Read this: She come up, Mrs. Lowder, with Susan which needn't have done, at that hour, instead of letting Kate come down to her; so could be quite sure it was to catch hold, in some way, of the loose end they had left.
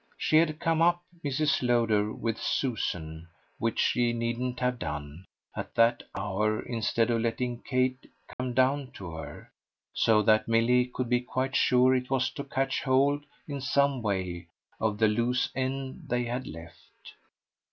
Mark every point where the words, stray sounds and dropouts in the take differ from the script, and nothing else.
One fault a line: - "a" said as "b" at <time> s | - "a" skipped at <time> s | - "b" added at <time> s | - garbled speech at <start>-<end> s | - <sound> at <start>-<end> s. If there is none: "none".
- "had" added at 0.4 s
- "she" added at 3.8 s
- dropout at 8.3-8.4 s
- "that Milly" added at 10.2 s